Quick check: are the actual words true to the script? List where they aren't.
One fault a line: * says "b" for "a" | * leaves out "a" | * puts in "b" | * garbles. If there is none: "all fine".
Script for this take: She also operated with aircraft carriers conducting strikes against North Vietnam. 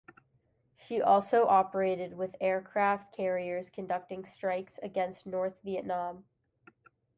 all fine